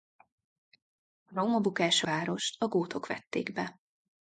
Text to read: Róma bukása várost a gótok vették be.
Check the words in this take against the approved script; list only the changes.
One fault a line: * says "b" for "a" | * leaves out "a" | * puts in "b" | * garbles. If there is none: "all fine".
all fine